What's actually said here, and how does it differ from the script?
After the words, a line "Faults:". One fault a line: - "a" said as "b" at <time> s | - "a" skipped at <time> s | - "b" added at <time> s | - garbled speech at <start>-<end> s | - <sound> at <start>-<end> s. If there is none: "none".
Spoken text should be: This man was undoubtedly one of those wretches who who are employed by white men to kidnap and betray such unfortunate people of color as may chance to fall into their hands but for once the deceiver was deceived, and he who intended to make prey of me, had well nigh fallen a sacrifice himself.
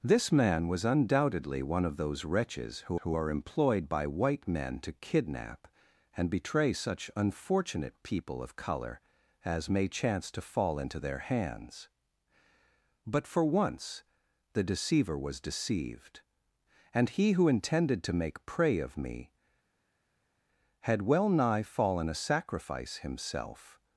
This man was undoubtedly one of those wretches who who are employed by white men to kidnap and betray such unfortunate people of color as may chance to fall into their hands but for once the deceiver was deceived, and he who intended to make prey of me, had well nigh fallen a sacrifice himself.
Faults:
none